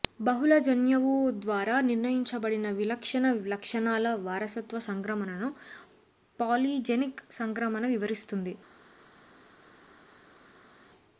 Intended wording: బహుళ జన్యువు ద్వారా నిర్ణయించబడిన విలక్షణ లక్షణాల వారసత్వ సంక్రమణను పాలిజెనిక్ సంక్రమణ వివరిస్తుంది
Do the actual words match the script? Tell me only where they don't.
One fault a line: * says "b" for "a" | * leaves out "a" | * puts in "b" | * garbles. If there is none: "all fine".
all fine